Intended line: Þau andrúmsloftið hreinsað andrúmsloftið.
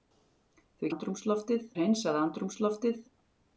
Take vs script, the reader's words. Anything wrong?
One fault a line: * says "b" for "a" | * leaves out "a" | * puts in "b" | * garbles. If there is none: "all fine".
all fine